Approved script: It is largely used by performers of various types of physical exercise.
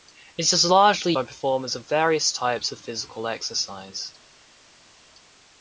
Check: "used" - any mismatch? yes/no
yes